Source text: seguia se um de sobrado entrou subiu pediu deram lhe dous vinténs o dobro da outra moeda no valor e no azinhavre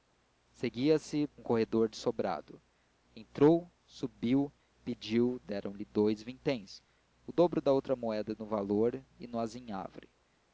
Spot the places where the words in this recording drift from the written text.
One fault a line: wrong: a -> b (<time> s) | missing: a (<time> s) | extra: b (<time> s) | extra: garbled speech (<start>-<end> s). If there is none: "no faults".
extra: corredor (1.4 s)